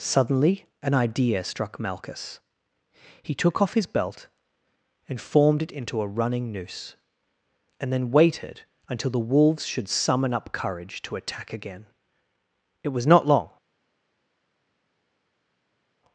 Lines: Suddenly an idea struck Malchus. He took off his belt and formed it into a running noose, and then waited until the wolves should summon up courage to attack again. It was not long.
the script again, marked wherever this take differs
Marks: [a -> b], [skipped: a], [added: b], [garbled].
Suddenly an idea struck Malchus. He took off his belt and formed it into a running noose, and then waited until the wolves should summon up courage to attack again. It was not long.